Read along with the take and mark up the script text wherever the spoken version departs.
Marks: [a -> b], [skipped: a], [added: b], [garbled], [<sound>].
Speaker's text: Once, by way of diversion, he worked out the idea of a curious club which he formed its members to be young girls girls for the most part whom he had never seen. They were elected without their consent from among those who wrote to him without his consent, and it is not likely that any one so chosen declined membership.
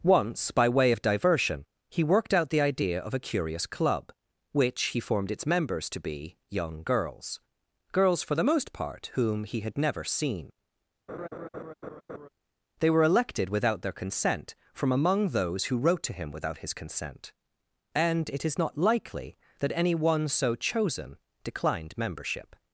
Once, by way of diversion, he worked out the idea of a curious club which he formed its members to be young girls girls for the most part whom he had never seen. [laugh] They were elected without their consent from among those who wrote to him without his consent, and it is not likely that any one so chosen declined membership.